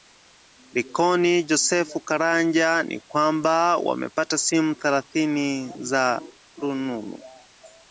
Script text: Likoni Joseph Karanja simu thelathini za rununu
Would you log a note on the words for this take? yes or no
yes